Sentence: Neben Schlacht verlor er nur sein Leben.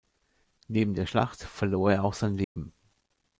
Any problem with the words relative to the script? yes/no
yes